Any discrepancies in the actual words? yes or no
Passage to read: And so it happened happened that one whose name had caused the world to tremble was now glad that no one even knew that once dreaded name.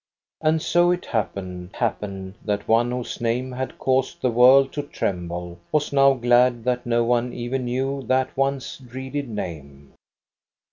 no